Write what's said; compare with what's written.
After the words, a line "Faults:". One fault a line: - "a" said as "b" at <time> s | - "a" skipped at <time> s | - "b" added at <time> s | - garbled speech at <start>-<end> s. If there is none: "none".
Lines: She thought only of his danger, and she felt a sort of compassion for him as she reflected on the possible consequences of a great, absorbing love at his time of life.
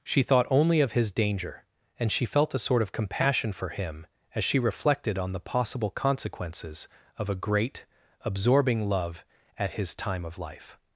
She thought only of his danger, and she felt a sort of compassion for him as she reflected on the possible consequences of a great, absorbing love at his time of life.
Faults:
none